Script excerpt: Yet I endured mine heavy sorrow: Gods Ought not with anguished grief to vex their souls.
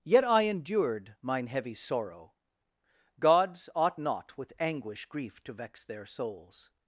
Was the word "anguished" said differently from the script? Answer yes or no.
yes